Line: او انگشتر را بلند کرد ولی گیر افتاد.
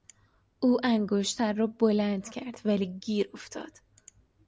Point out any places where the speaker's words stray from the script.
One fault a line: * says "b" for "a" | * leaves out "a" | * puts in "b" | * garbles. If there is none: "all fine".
all fine